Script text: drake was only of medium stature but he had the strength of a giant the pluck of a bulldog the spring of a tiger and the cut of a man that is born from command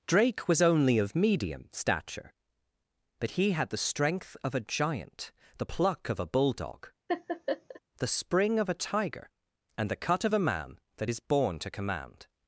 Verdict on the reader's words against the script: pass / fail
fail